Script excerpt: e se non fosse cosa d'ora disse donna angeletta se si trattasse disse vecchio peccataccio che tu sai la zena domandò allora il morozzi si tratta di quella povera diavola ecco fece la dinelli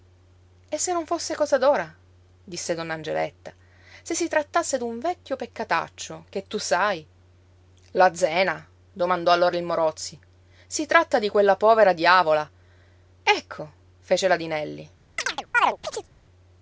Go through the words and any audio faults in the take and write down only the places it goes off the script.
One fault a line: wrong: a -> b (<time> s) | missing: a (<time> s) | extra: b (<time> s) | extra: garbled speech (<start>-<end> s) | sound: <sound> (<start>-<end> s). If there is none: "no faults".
wrong: disse -> d'un (4.8 s)
sound: chirp (15.2-16.1 s)